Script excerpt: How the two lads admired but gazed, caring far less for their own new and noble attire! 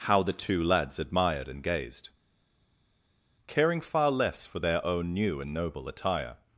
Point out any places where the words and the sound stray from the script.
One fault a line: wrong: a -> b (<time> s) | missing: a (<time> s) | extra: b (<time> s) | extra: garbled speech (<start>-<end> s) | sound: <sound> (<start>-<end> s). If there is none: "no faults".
wrong: but -> and (1.5 s)